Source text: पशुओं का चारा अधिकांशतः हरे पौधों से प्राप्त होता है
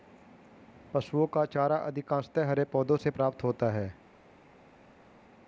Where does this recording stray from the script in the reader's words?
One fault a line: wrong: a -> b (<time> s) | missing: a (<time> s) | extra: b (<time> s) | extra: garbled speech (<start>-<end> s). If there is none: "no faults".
no faults